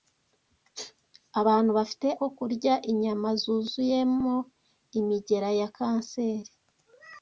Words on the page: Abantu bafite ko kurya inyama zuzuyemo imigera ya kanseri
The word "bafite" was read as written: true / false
true